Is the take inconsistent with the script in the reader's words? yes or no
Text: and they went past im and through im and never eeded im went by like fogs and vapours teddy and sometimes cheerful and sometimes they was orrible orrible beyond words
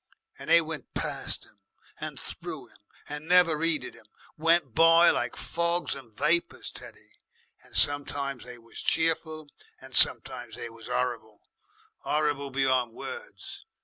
yes